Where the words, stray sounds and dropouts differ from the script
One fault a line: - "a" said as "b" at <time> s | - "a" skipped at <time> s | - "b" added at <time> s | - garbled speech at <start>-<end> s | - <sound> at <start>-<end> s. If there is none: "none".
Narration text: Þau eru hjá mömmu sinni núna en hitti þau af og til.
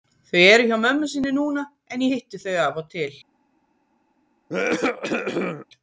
- cough at 4.5-5.7 s